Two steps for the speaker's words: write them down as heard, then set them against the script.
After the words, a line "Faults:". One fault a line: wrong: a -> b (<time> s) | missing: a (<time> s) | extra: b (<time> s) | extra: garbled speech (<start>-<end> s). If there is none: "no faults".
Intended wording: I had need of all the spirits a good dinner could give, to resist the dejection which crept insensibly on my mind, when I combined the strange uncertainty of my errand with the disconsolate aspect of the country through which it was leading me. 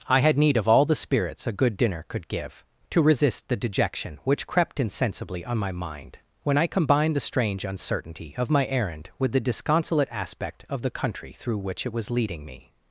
I had need of all the spirits a good dinner could give, to resist the dejection which crept insensibly on my mind, when I combined the strange uncertainty of my errand with the disconsolate aspect of the country through which it was leading me.
Faults:
no faults